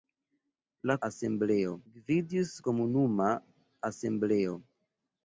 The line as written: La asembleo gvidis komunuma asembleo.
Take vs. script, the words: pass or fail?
pass